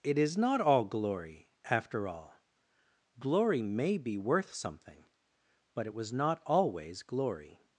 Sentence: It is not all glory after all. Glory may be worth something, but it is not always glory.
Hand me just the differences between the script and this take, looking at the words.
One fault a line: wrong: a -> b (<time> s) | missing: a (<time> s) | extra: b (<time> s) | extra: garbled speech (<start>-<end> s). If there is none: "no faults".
wrong: is -> was (5.9 s)